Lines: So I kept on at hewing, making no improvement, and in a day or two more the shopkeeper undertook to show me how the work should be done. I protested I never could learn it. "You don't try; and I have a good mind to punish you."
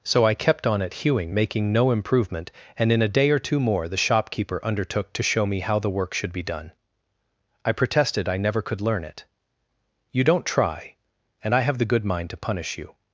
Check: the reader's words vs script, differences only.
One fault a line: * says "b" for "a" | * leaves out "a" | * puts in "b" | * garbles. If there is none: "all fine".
* says "the" for "a"